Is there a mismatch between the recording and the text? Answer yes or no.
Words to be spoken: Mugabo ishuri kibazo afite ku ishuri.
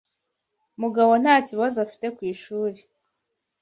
yes